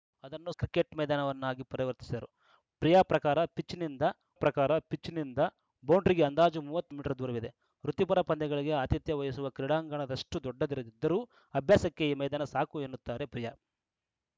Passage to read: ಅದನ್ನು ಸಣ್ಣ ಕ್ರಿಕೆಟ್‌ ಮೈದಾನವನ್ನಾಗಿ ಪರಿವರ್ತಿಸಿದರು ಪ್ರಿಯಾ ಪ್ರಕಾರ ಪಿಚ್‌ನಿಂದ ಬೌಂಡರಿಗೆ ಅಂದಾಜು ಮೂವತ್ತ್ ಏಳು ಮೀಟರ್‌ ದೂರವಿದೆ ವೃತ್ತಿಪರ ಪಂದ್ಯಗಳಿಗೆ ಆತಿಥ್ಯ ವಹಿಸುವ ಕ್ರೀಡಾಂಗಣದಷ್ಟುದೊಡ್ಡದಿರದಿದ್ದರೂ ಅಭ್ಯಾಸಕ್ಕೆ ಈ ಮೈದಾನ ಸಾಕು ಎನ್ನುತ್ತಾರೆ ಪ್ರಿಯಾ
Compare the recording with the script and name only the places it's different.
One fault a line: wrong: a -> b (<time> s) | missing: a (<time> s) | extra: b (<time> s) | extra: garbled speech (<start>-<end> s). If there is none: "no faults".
missing: ಸಣ್ಣ (0.5 s)
extra: ಪ್ರಕಾರ ಪಿಚ್‌ನಿಂದ (4.3 s)
missing: ಏಳು (6.9 s)